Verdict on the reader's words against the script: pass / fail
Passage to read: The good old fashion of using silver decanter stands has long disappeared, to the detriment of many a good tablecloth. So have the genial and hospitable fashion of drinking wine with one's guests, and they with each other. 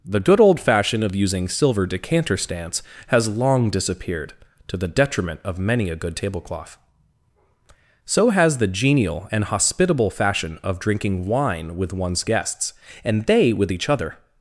fail